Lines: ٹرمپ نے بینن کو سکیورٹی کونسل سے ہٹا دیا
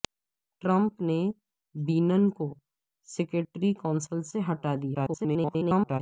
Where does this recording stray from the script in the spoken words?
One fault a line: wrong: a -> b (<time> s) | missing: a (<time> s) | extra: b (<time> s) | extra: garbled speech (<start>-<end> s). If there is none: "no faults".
extra: garbled speech (4.9-6.0 s)